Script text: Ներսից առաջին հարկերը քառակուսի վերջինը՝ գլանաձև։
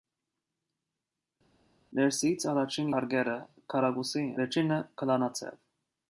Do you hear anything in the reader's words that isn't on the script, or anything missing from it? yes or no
no